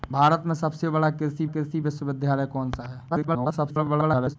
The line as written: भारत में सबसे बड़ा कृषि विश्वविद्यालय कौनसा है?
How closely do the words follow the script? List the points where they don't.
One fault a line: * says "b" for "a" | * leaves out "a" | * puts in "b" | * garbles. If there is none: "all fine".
* puts in "कृषि"
* garbles